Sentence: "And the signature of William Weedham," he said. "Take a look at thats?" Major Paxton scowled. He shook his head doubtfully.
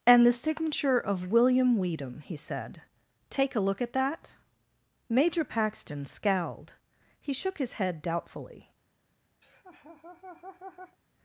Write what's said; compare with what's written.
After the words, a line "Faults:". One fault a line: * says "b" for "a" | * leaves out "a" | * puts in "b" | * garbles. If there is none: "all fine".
"And the signature of William Weedham," he said. "Take a look at that?" Major Paxton scowled. He shook his head doubtfully.
Faults:
* says "that" for "thats"